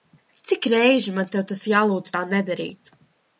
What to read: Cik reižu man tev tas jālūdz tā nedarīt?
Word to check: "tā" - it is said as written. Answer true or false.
true